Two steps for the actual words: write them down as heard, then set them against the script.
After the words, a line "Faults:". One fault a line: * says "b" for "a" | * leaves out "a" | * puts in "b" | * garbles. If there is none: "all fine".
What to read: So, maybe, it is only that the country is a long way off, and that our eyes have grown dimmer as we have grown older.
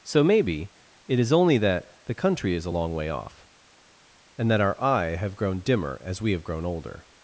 So, maybe, it is only that the country is a long way off, and that our eye have grown dimmer as we have grown older.
Faults:
* says "eye" for "eyes"